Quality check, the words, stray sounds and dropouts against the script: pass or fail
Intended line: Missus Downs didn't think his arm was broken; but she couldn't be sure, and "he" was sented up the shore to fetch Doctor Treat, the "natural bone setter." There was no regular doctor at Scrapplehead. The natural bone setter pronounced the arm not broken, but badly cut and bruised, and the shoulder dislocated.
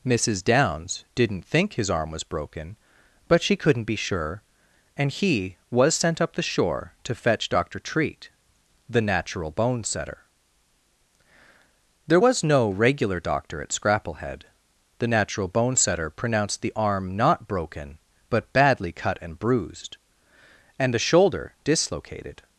fail